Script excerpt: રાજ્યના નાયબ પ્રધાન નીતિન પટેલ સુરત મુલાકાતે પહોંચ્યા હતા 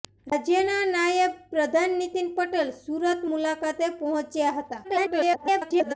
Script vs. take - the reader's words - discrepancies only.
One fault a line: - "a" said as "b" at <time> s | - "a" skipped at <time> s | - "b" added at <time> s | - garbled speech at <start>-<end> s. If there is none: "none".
- garbled speech at 4.8-5.9 s